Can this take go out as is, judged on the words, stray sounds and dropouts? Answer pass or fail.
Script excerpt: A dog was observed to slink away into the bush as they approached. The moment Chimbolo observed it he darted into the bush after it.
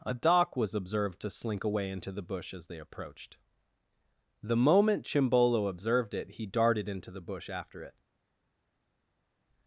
fail